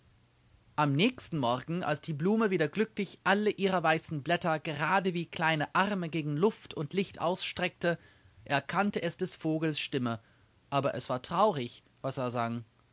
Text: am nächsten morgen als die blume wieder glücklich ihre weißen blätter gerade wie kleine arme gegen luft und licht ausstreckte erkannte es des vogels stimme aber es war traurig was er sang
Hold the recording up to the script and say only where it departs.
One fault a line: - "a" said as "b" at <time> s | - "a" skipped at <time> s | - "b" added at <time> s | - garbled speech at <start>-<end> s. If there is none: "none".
- "alle" added at 3.2 s